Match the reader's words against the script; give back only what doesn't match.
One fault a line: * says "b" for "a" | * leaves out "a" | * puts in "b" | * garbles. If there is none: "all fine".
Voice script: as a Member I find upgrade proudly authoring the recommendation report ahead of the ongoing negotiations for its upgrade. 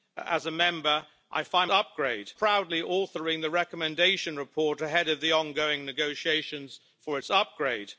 all fine